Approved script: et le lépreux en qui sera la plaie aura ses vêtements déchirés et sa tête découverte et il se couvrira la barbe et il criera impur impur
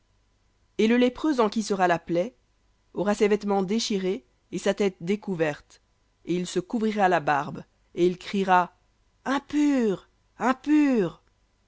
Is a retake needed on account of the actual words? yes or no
no